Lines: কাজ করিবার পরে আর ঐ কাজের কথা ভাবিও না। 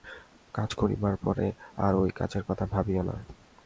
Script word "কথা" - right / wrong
right